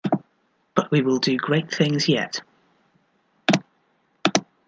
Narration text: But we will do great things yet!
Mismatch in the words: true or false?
false